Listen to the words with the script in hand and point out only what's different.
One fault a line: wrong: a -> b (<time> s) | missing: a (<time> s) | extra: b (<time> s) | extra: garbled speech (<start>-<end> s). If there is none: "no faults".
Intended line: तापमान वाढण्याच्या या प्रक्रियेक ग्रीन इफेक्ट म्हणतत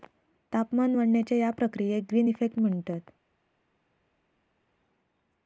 no faults